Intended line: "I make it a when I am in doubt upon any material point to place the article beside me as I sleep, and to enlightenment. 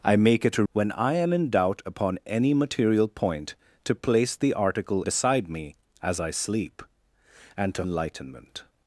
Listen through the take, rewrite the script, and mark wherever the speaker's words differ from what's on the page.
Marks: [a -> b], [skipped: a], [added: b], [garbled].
"I make it a when I am in doubt upon any material point to place the article beside me as I sleep, and to enlightenment.